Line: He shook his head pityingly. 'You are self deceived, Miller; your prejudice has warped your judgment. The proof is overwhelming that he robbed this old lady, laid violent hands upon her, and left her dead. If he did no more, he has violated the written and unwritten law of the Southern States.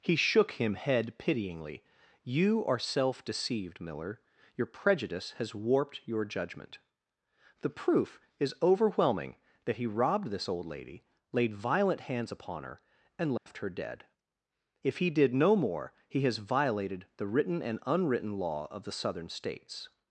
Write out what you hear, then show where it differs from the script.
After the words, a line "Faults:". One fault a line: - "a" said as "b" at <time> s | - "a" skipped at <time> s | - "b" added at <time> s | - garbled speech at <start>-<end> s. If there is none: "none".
He shook him head pityingly. 'You are self deceived, Miller; your prejudice has warped your judgment. The proof is overwhelming that he robbed this old lady, laid violent hands upon her, and left her dead. If he did no more, he has violated the written and unwritten law of the Southern States.
Faults:
- "his" said as "him" at 0.5 s